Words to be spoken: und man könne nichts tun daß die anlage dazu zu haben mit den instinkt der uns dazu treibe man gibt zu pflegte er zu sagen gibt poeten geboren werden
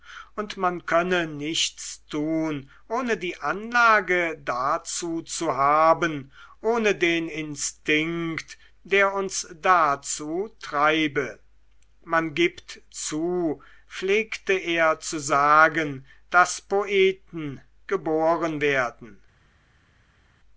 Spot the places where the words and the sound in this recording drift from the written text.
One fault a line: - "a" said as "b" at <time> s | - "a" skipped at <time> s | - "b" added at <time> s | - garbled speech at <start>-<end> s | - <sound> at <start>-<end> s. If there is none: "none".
- "daß" said as "ohne" at 2.9 s
- "mit" said as "ohne" at 6.6 s
- "gibt" said as "daß" at 16.3 s